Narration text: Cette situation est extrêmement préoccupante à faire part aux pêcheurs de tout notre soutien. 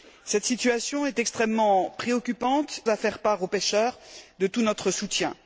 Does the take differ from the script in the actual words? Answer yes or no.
no